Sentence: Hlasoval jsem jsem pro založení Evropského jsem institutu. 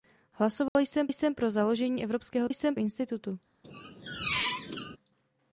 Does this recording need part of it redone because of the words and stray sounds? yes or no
yes